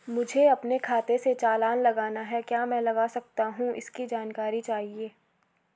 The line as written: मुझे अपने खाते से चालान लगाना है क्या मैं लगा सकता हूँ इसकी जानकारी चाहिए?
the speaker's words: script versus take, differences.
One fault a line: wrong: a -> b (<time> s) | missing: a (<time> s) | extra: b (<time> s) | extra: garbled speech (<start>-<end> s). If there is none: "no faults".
no faults